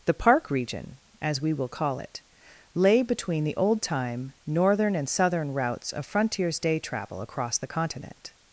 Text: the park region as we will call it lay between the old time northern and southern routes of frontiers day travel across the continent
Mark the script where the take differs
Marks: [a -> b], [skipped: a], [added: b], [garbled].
the park region as we will call it lay between the old time northern and southern routes of frontiers day travel across the continent